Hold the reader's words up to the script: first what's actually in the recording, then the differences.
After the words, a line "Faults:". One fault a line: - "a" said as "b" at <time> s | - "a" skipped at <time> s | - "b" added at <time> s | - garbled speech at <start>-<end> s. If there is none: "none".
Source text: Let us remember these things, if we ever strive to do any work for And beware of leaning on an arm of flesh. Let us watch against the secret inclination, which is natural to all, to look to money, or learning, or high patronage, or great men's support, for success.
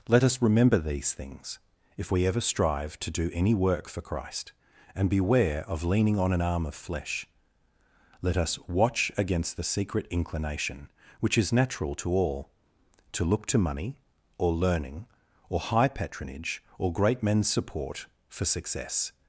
Let us remember these things, if we ever strive to do any work for Christ, and beware of leaning on an arm of flesh. Let us watch against the secret inclination, which is natural to all, to look to money, or learning, or high patronage, or great men's support, for success.
Faults:
- "Christ" added at 4.0 s